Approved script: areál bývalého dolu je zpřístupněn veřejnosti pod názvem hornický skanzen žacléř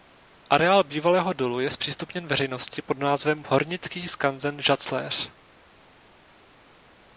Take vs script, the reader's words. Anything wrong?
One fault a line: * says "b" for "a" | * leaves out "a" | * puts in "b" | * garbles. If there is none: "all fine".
all fine